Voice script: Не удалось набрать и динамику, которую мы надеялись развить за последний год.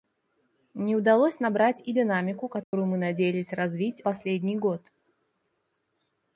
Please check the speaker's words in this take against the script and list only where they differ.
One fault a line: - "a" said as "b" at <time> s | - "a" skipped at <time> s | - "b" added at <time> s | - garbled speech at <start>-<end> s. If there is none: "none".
- "за" skipped at 4.0 s